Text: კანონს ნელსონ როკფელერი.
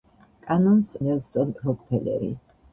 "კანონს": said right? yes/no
yes